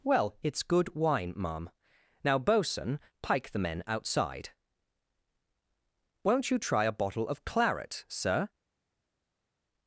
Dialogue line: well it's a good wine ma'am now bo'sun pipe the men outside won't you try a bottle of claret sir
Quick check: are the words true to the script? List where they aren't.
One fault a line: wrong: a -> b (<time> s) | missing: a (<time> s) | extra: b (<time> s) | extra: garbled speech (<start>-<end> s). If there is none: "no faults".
missing: a (0.6 s)
wrong: pipe -> pike (3.2 s)